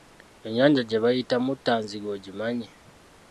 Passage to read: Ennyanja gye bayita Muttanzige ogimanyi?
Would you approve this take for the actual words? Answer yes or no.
yes